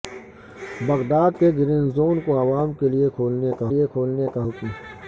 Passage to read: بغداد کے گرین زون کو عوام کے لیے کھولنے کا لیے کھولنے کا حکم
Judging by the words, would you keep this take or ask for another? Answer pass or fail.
pass